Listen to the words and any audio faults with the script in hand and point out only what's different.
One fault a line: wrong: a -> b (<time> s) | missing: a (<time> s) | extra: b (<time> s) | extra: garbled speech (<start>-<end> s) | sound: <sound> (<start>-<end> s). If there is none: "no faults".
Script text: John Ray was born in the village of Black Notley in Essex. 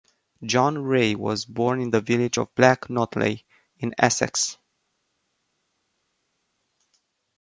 no faults